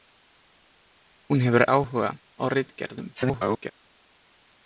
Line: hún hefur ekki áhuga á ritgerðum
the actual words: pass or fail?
fail